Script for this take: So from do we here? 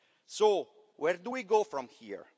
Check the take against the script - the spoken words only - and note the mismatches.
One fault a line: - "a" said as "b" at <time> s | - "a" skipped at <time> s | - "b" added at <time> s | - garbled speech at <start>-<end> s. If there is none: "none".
- "from" said as "where" at 1.0 s
- "go from" added at 1.4 s